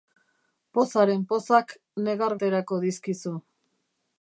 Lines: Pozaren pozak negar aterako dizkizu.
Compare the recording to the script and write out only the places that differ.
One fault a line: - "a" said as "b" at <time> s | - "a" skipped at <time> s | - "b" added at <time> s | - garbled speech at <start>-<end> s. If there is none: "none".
none